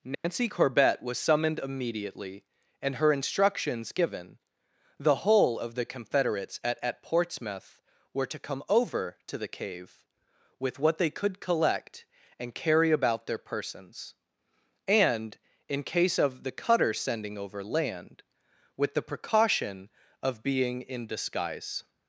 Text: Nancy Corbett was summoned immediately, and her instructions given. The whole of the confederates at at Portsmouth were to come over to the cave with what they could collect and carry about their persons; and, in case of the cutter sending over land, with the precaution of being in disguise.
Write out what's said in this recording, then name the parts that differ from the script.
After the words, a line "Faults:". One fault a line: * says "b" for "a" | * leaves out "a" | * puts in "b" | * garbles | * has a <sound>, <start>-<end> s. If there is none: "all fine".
Nancy Corbett was summoned immediately, and her instructions given. The whole of the confederates at at Portsmouth were to come over to the cave with what they could collect and carry about their persons; and, in case of the cutter sending over land, with the precaution of being in disguise.
Faults:
* has a dropout, 0.1-0.2 s